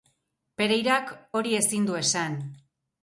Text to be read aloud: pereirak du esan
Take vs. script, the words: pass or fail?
fail